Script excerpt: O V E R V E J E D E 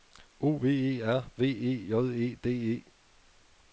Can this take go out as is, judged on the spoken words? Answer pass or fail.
pass